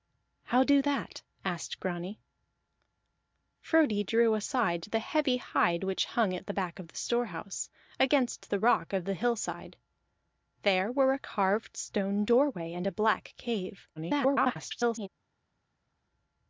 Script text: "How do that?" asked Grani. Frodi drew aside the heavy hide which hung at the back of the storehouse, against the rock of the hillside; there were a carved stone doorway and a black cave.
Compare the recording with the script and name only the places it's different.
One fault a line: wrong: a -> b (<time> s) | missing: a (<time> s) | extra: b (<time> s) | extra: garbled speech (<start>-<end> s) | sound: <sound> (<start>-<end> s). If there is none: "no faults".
extra: garbled speech (14.0-15.1 s)